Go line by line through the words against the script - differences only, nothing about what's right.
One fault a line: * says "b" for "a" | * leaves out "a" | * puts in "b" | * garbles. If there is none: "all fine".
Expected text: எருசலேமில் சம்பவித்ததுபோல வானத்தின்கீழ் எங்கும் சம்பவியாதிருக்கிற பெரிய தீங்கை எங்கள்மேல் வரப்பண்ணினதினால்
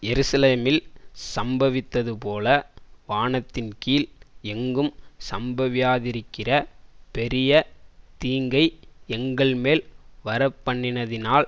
all fine